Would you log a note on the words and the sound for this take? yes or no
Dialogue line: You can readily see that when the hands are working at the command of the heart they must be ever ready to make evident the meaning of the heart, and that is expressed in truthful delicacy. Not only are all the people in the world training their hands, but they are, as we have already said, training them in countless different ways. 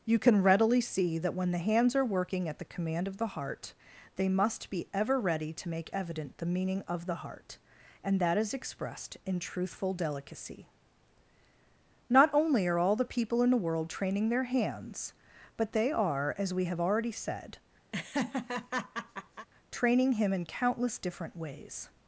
yes